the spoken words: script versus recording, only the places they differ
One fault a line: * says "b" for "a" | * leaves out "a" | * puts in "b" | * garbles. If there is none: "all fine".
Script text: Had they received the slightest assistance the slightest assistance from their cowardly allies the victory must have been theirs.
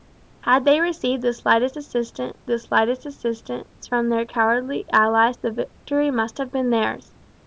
all fine